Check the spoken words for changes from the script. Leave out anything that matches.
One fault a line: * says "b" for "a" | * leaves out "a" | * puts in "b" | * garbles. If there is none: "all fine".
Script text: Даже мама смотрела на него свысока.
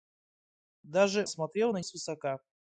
* leaves out "мама"
* leaves out "него"